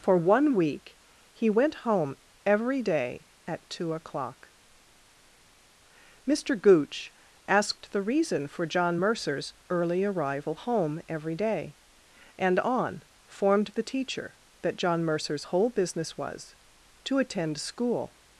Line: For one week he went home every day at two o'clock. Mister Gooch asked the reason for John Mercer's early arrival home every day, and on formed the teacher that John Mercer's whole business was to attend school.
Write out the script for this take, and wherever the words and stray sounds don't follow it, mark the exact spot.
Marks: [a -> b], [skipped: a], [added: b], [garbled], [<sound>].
For one week he went home every day at two o'clock. Mister Gooch asked the reason for John Mercer's early arrival home every day, and on formed the teacher that John Mercer's whole business was to attend school.